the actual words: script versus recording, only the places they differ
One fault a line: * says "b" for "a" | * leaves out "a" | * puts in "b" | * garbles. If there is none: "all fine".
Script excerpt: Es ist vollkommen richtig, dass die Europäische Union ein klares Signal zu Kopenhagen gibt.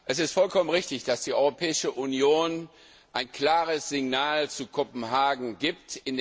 all fine